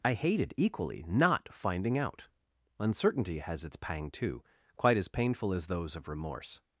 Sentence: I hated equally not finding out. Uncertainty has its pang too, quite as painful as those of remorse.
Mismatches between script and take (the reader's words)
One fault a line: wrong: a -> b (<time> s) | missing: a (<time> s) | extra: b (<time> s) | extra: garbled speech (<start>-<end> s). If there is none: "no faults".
no faults